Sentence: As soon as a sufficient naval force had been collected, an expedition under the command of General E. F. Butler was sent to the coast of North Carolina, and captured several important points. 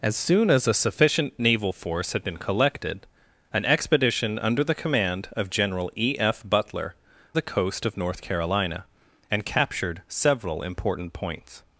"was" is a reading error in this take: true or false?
true